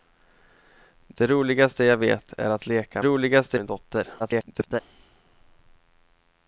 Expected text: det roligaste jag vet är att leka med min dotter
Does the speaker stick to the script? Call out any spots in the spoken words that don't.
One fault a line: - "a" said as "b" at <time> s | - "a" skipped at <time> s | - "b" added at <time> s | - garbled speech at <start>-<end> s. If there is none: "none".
- "med" said as "roligaste" at 3.0 s
- garbled speech at 4.2-4.8 s